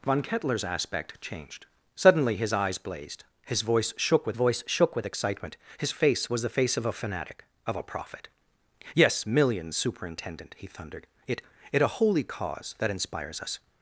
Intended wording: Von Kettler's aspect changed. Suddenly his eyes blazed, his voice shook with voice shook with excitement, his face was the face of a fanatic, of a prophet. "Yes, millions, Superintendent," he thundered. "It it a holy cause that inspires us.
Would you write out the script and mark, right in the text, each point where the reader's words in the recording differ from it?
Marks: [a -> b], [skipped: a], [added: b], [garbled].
Von Kettler's aspect changed. Suddenly his eyes blazed, his voice shook with voice shook with excitement, his face was the face of a fanatic, of a prophet. "Yes, millions, Superintendent," he thundered. "It it a holy cause that inspires us.